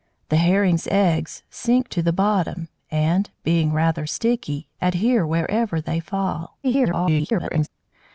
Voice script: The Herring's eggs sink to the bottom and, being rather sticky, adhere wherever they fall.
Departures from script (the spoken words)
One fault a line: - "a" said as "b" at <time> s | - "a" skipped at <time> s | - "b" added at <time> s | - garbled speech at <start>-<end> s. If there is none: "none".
- garbled speech at 6.6-7.7 s